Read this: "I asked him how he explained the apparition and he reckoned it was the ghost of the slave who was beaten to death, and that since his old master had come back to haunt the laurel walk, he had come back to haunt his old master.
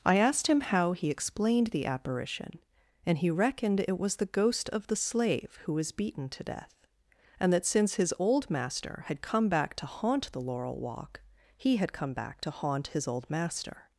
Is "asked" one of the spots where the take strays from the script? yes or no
no